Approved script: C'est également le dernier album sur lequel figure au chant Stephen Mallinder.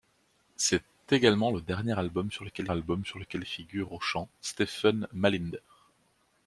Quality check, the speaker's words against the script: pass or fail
fail